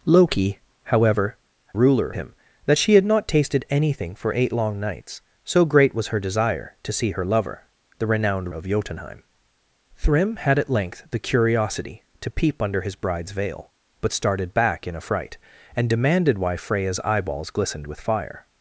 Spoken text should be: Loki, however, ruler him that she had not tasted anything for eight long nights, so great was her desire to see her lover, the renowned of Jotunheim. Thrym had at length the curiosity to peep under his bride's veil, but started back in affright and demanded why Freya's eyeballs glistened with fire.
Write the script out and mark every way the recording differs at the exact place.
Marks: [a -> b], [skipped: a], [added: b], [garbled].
Loki, however, ruler him that she had not tasted anything for eight long nights, so great was her desire to see her lover, the renowned of Jotunheim. Thrym had at length the curiosity to peep under his bride's veil, but started back in affright and demanded why Freya's eyeballs glistened with fire.